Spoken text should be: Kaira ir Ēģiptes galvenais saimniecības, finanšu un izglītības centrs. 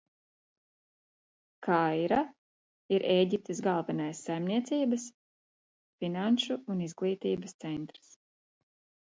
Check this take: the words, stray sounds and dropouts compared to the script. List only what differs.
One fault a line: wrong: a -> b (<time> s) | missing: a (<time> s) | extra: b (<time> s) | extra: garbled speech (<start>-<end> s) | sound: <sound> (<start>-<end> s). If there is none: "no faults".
no faults